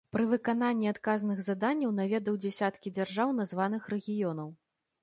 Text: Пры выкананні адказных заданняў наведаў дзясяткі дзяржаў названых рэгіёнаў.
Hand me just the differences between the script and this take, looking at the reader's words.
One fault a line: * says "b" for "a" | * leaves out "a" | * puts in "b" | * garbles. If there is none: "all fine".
all fine